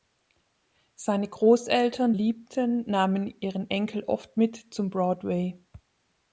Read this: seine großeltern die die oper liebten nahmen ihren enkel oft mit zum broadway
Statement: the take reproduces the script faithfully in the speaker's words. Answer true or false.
false